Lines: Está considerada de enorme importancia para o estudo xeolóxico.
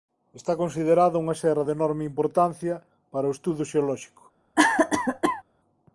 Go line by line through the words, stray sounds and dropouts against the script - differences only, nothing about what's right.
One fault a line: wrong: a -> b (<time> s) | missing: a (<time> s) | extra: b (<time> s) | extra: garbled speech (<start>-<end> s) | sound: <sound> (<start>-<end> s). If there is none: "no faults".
extra: unha serra (1.2 s)
sound: cough (4.5-5.4 s)